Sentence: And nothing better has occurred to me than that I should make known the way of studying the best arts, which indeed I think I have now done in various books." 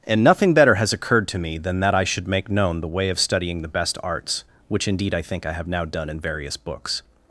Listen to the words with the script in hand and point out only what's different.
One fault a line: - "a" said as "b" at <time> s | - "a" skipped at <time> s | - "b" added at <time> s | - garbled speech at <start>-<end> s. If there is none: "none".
none